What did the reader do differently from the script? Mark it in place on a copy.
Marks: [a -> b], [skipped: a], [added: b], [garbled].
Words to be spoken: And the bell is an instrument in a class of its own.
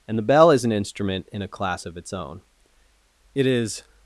And the bell is an instrument in a class of its own. [added: It is]